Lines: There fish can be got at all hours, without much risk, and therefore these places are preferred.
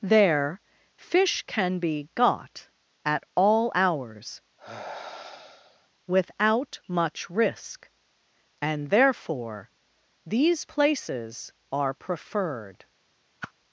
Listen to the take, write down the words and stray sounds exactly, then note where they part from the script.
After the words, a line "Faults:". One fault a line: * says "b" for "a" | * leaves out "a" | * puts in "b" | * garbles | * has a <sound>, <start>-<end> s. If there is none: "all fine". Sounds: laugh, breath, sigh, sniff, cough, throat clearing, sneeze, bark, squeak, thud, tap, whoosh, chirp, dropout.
There fish can be got at all hours, without much risk, and therefore these places are preferred.
Faults:
* has a sigh, 4.6-5.9 s
* has a whoosh, 13.4-13.5 s